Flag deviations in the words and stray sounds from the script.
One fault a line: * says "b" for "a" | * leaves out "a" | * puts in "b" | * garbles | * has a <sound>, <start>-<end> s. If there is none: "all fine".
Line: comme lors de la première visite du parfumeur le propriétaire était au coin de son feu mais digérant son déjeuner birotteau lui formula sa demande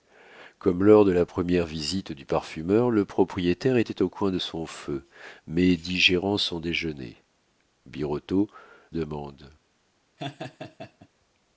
* leaves out "lui formula sa"
* has a laugh, 10.2-11.1 s